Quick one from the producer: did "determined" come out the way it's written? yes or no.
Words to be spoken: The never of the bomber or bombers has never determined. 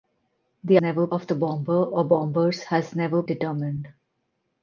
yes